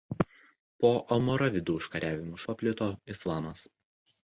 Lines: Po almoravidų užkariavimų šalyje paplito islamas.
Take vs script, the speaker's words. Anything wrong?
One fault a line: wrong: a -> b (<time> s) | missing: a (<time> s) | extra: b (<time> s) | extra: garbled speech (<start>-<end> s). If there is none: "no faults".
missing: šalyje (2.4 s)